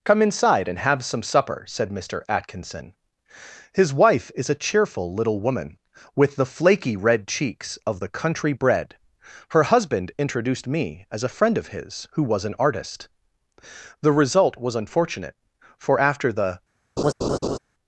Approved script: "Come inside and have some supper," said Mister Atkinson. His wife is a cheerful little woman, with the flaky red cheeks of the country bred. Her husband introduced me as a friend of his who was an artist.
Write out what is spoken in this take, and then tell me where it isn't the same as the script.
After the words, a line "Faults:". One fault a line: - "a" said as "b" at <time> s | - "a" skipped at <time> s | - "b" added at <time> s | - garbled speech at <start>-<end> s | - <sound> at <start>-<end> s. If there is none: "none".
"Come inside and have some supper," said Mister Atkinson. His wife is a cheerful little woman, with the flaky red cheeks of the country bred. Her husband introduced me as a friend of his who was an artist. The result was unfortunate, for after the
Faults:
- "The result was unfortunate for after the" added at 14.0 s
- laugh at 17.0-17.6 s